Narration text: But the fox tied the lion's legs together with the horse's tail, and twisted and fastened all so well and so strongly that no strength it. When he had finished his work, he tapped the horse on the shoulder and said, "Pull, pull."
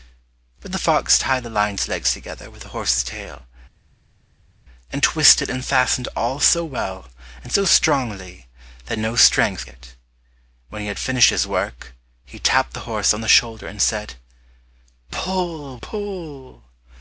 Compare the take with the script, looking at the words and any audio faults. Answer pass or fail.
pass